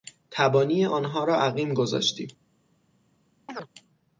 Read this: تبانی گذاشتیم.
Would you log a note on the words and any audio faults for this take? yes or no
yes